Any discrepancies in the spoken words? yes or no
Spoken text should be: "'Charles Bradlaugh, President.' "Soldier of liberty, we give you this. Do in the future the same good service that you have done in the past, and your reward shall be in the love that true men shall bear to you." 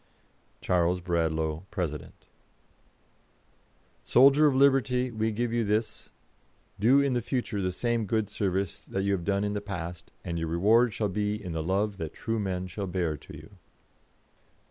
no